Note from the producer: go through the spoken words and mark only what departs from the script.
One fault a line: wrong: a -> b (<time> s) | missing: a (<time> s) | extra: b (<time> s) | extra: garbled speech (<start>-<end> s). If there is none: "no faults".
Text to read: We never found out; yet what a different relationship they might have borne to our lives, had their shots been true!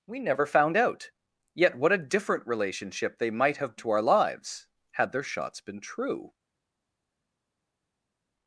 missing: borne (3.8 s)